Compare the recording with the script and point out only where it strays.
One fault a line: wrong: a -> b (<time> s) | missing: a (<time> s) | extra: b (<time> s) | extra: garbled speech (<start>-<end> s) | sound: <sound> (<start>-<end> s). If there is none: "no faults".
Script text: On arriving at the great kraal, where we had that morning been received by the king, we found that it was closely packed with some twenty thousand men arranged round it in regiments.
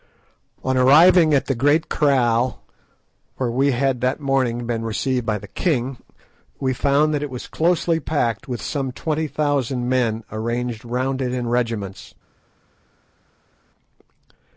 no faults